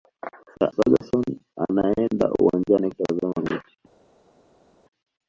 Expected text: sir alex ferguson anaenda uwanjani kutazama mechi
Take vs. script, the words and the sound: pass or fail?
fail